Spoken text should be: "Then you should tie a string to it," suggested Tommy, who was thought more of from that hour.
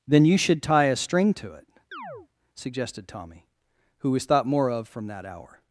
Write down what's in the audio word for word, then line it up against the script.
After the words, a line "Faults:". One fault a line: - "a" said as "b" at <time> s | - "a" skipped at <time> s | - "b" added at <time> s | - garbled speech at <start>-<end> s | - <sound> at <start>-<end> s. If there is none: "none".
"Then you should tie a string to it," suggested Tommy, who was thought more of from that hour.
Faults:
- chirp at 1.9-2.3 s